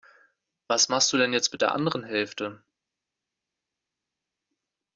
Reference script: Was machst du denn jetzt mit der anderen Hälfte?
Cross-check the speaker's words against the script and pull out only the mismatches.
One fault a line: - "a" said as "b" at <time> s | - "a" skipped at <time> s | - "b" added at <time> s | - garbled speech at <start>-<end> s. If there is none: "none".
none